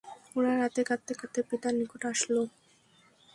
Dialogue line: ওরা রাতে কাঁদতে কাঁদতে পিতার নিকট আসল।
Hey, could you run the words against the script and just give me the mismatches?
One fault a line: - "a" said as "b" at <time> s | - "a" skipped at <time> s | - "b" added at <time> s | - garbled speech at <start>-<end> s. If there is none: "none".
none